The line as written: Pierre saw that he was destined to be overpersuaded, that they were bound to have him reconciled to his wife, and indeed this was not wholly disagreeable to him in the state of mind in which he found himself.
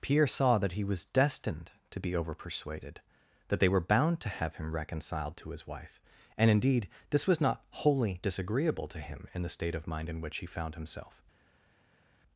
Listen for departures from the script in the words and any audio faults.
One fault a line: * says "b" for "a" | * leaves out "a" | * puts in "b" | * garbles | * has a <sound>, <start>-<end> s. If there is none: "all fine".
all fine